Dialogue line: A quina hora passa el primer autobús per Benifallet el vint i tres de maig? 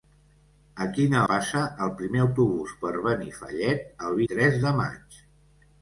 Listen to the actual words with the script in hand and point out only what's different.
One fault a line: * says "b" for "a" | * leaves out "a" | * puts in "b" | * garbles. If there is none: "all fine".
* leaves out "hora"
* leaves out "vint"